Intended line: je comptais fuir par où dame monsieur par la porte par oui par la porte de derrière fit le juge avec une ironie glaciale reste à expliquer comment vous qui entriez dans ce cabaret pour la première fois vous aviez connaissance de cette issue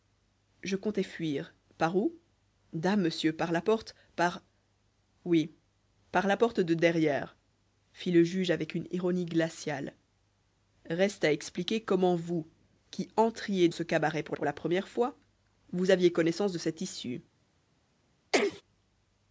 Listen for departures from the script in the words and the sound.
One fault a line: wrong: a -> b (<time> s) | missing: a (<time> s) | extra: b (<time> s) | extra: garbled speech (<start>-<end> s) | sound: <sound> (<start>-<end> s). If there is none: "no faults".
missing: dans (13.7 s)
extra: pour (14.3 s)
sound: sneeze (18.3-18.6 s)